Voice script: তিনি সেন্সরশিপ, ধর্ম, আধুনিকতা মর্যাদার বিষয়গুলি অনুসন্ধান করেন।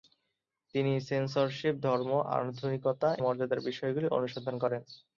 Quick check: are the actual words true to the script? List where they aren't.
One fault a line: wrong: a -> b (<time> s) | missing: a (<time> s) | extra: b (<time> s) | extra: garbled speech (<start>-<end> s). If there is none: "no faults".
no faults